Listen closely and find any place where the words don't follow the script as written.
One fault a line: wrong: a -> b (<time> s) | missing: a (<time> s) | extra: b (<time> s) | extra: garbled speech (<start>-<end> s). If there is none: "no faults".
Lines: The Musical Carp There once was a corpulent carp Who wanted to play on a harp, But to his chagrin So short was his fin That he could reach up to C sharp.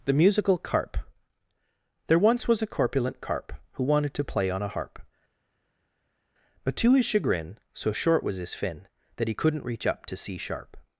wrong: could -> couldn't (9.3 s)